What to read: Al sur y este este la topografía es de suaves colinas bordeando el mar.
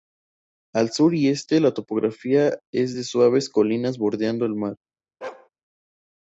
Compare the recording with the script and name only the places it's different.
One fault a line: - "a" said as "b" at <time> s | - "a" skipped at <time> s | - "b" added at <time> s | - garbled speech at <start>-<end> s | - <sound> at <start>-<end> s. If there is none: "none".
- "este" skipped at 1.6 s
- bark at 5.2-5.5 s